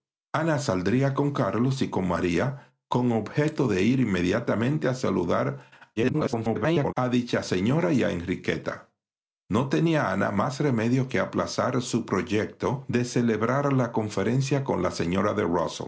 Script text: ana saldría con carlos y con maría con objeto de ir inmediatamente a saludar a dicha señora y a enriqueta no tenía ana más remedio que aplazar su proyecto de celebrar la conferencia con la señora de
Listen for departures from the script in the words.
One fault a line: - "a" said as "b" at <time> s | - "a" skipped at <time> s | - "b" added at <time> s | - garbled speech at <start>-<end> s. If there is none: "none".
- garbled speech at 6.0-6.9 s